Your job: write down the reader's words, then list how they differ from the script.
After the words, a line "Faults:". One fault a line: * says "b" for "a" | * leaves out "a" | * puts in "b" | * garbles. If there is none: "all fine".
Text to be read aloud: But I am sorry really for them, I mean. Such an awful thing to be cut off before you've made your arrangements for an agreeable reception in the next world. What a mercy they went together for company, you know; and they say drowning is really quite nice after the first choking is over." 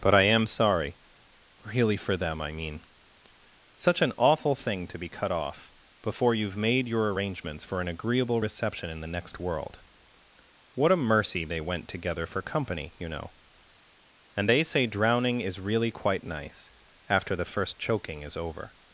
But I am sorry really for them, I mean. Such an awful thing to be cut off before you've made your arrangements for an agreeable reception in the next world. What a mercy they went together for company, you know; and they say drowning is really quite nice after the first choking is over."
Faults:
all fine